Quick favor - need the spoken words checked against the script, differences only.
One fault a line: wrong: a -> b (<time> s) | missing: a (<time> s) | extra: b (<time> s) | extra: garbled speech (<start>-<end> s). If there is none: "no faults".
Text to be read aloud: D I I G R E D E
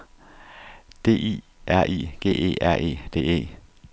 extra: R (1.7 s)
extra: E (2.3 s)